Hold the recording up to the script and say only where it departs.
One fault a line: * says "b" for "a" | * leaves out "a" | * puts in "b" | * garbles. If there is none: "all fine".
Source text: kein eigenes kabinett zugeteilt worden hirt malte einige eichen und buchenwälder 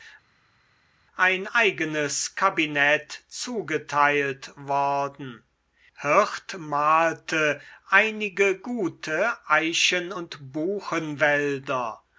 * says "ein" for "kein"
* puts in "gute"